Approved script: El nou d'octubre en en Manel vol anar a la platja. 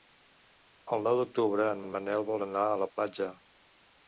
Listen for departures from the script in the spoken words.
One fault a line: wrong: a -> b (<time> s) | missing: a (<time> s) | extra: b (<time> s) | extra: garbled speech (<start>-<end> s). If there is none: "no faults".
no faults